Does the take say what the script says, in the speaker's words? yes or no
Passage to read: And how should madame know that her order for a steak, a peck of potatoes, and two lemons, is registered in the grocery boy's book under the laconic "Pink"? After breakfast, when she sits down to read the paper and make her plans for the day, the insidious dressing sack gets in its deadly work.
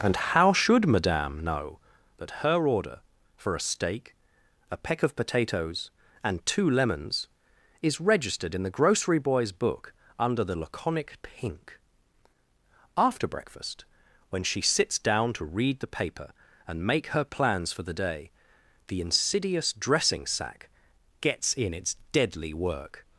yes